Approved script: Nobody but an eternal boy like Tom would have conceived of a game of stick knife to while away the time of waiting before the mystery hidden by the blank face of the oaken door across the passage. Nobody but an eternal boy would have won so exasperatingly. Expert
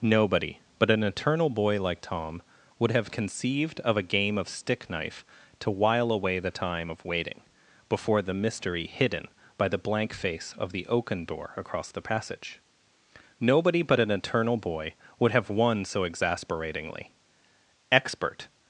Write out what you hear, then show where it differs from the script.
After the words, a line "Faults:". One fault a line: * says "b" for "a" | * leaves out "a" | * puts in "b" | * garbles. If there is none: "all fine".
Nobody but an eternal boy like Tom would have conceived of a game of stick knife to while away the time of waiting before the mystery hidden by the blank face of the oaken door across the passage. Nobody but an eternal boy would have won so exasperatingly. Expert
Faults:
all fine